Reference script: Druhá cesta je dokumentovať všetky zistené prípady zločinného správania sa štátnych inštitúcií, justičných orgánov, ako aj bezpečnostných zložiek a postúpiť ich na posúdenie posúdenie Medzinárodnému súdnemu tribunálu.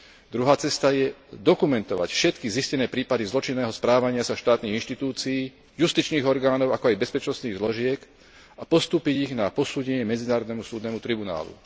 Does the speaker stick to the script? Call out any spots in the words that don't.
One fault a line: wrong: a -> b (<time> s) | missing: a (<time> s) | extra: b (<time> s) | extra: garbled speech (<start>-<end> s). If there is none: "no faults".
missing: posúdenie (10.0 s)